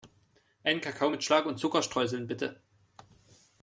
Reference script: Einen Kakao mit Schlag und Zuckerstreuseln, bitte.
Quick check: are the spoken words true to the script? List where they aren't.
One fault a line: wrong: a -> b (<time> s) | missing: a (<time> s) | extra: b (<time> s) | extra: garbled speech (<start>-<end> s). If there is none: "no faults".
no faults